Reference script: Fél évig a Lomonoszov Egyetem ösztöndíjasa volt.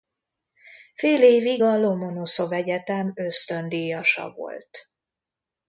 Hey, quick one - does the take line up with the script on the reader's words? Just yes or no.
yes